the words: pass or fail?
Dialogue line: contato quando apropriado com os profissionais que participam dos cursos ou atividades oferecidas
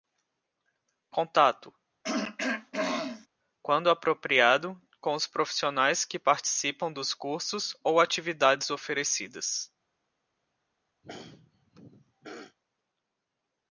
pass